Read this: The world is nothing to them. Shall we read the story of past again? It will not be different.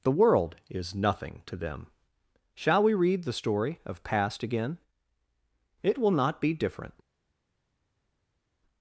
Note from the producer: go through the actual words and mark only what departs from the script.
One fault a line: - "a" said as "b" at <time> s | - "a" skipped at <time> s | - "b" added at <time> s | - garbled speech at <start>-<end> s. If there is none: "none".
none